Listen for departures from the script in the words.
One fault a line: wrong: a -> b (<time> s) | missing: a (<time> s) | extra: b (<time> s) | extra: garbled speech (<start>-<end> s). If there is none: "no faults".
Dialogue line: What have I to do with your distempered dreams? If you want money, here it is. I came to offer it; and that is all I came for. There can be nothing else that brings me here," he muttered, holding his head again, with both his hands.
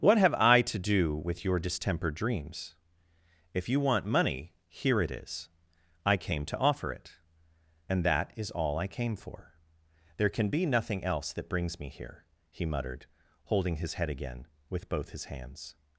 no faults